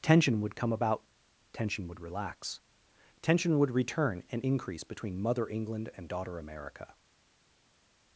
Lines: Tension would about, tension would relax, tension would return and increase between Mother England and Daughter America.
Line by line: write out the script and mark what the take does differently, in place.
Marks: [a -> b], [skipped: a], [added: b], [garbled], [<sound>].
Tension would [added: come] about, tension would relax, tension would return and increase between Mother England and Daughter America.